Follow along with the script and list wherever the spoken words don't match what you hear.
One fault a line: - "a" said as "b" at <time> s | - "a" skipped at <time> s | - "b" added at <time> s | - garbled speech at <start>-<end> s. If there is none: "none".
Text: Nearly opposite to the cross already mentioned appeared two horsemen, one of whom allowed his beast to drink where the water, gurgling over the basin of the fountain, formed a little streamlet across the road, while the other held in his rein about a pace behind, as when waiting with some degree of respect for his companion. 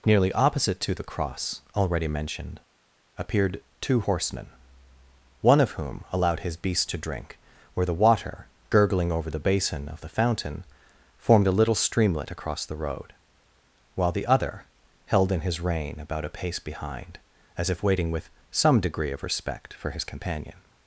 - "when" said as "if" at 17.7 s